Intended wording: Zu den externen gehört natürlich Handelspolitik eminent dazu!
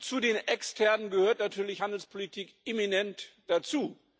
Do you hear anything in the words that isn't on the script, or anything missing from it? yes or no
no